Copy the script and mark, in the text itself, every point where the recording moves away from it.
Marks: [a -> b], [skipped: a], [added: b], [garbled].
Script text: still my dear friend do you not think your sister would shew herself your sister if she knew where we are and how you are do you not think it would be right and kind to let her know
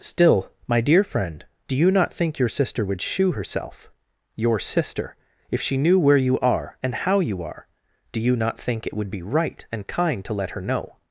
still my dear friend do you not think your sister would shew herself your sister if she knew where [we -> you] are and how you are do you not think it would be right and kind to let her know